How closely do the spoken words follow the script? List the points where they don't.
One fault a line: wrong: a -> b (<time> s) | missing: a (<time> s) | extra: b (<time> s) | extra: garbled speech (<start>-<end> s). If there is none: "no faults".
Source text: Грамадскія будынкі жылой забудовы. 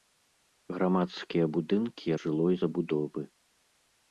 no faults